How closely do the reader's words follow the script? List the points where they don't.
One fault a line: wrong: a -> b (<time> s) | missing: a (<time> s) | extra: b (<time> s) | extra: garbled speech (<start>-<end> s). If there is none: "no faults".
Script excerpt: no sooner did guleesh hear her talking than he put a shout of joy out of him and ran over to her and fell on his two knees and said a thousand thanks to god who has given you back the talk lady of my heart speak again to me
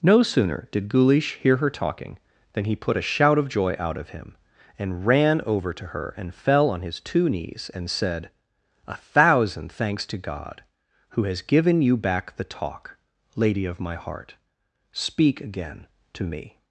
no faults